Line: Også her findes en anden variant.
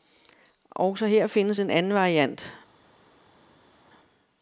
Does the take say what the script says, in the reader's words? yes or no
yes